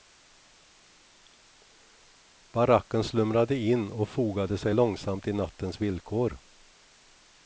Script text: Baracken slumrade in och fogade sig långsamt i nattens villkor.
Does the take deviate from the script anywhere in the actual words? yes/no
no